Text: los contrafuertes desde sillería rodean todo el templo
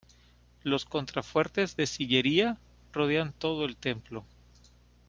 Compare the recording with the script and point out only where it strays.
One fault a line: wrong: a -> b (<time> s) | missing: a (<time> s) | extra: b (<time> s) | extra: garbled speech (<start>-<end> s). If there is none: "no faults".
wrong: desde -> de (1.7 s)